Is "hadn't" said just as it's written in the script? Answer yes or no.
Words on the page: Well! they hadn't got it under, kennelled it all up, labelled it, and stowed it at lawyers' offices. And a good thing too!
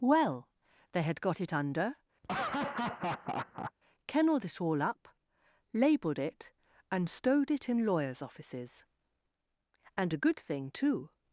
no